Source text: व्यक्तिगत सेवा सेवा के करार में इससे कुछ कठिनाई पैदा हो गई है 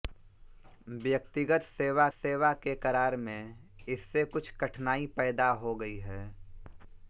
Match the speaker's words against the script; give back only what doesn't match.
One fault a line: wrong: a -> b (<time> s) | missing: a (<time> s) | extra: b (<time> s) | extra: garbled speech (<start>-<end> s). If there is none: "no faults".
no faults